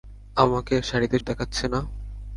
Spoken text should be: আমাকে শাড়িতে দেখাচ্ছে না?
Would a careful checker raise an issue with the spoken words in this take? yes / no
no